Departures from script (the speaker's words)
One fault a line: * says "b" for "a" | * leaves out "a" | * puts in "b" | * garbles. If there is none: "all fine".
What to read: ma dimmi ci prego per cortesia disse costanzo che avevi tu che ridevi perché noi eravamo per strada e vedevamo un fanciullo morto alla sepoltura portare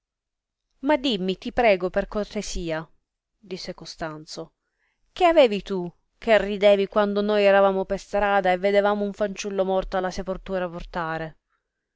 * says "ti" for "ci"
* says "quando" for "perché"